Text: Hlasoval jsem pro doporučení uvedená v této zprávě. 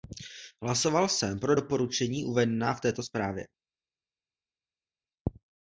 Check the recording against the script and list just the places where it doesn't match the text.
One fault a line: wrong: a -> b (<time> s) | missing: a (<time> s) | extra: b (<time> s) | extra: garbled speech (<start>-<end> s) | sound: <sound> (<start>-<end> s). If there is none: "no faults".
no faults